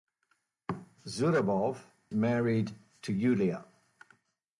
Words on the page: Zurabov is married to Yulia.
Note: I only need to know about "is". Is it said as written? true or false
false